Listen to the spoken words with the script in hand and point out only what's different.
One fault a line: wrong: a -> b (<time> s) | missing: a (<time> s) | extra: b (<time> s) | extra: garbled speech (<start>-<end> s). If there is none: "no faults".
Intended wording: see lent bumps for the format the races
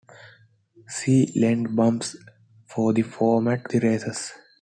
no faults